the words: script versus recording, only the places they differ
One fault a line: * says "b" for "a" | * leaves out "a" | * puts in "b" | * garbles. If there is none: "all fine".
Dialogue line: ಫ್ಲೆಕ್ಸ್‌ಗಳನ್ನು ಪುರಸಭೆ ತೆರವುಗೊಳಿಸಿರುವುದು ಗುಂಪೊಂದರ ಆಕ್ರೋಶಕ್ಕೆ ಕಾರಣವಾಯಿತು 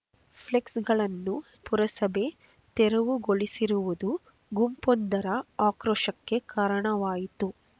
all fine